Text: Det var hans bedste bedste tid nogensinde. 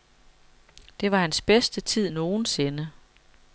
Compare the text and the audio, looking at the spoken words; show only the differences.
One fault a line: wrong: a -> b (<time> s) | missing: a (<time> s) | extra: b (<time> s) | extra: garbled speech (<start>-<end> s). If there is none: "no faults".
missing: bedste (1.8 s)